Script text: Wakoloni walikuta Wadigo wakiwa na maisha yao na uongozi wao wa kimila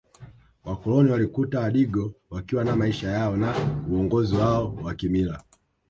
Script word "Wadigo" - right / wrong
right